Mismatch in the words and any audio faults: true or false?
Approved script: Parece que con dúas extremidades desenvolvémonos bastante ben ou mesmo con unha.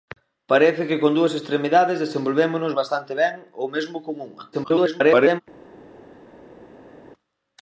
true